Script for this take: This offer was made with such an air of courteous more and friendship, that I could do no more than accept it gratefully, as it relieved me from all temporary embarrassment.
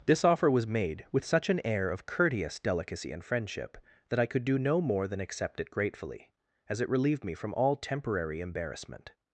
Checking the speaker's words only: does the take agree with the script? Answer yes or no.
no